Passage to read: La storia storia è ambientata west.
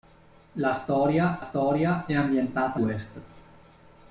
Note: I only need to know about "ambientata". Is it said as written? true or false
true